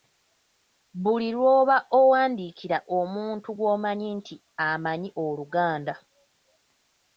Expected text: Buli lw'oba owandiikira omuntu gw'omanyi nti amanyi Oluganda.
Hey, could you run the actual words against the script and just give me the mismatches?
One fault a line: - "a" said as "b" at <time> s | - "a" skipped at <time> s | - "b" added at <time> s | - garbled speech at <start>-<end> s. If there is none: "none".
none